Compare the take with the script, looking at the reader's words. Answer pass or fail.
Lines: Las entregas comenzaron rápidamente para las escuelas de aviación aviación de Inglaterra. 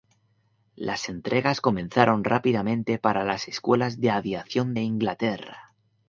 fail